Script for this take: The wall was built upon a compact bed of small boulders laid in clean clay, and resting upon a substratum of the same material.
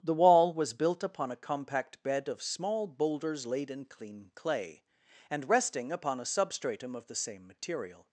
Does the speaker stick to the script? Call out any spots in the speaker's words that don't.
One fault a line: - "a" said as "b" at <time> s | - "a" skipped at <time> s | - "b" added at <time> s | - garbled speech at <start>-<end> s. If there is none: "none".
none